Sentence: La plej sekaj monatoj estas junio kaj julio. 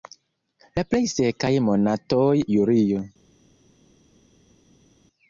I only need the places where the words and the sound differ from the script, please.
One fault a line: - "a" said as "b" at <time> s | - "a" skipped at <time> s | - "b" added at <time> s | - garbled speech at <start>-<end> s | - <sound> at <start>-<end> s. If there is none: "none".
- "estas junio kaj" skipped at 2.3 s